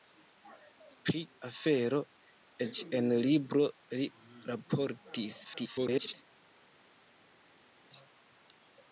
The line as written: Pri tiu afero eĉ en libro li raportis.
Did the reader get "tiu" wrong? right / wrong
wrong